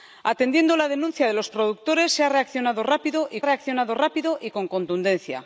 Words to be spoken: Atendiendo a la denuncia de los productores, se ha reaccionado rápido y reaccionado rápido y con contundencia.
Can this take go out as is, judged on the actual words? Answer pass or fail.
pass